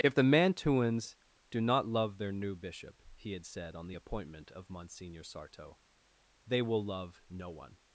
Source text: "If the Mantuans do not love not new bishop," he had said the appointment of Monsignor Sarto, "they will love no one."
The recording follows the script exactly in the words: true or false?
false